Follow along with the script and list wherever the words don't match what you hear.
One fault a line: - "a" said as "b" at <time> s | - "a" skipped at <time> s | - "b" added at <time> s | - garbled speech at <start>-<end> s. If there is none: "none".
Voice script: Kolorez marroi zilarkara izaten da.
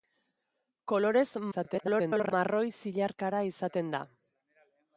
- garbled speech at 1.5-2.3 s